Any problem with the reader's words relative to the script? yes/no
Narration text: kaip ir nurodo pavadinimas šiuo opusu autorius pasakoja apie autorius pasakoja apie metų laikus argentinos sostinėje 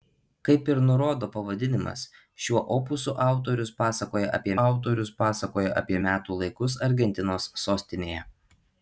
no